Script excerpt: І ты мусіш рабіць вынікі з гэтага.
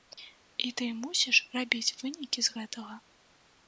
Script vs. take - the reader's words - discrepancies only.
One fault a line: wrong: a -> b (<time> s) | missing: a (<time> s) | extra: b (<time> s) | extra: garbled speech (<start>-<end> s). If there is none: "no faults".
no faults